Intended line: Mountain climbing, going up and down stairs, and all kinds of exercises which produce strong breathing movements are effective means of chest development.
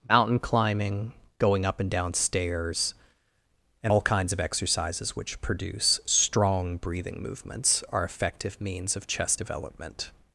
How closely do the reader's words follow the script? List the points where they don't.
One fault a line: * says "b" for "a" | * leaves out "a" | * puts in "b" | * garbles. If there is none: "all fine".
all fine